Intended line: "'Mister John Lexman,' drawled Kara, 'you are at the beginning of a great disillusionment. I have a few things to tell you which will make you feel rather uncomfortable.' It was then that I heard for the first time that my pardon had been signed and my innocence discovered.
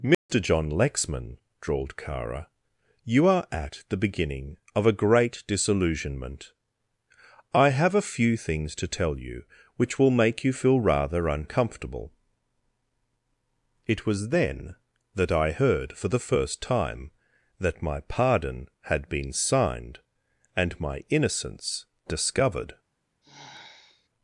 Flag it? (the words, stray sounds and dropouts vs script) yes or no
yes